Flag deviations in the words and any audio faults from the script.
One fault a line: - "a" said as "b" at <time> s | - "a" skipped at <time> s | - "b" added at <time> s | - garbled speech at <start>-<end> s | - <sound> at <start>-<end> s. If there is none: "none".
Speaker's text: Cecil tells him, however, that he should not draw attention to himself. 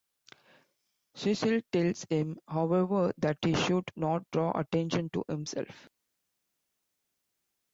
none